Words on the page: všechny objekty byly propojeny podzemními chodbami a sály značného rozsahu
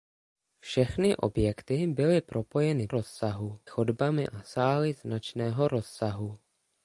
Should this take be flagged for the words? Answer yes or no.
yes